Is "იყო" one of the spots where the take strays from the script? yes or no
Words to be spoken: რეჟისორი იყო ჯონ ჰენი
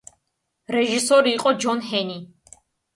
no